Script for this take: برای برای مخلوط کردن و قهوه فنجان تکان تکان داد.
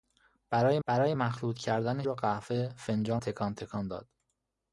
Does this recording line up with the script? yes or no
yes